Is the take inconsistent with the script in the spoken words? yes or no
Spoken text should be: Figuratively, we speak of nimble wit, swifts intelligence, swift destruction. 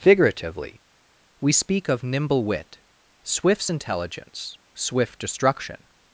no